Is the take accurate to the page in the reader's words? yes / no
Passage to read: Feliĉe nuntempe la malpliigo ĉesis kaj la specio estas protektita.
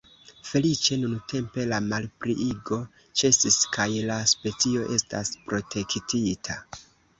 yes